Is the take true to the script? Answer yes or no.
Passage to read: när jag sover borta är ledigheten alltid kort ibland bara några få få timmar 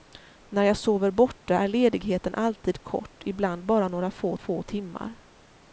yes